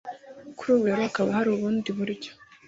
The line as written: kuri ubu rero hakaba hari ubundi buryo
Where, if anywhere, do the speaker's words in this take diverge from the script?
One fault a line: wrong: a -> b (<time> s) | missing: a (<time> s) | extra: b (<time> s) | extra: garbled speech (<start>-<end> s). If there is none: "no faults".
no faults